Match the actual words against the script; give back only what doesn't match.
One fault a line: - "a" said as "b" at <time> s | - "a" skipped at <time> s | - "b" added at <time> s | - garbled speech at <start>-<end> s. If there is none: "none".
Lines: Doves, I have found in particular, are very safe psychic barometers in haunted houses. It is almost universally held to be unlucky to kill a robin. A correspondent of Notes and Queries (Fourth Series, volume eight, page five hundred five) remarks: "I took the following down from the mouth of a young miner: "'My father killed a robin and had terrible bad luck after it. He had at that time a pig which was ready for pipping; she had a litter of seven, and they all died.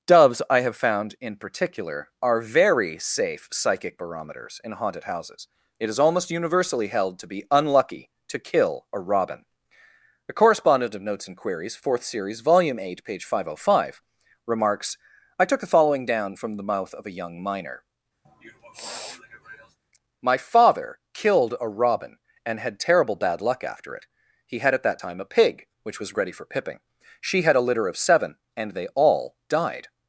none